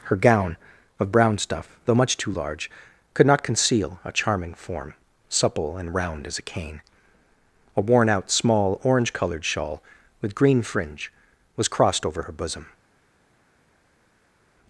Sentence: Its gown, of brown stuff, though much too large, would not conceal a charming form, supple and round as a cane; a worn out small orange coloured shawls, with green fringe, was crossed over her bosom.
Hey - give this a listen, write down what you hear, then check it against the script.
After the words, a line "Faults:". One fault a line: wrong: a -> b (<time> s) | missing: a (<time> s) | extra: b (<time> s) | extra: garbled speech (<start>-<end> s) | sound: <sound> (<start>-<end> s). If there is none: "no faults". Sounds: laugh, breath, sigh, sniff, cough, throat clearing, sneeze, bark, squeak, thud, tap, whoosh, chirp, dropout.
Her gown, of brown stuff, though much too large, could not conceal a charming form, supple and round as a cane; a worn out small orange coloured shawl, with green fringe, was crossed over her bosom.
Faults:
wrong: Its -> Her (0.0 s)
wrong: would -> could (3.1 s)
wrong: shawls -> shawl (9.5 s)